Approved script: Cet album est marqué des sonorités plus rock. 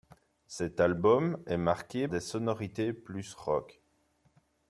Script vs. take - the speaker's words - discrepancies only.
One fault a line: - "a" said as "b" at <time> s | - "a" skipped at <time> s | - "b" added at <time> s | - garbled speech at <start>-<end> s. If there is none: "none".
none